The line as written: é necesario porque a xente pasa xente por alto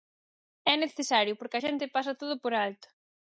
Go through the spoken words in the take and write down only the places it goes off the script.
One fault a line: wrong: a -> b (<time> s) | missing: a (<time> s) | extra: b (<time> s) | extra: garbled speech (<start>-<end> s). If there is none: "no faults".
wrong: xente -> todo (2.2 s)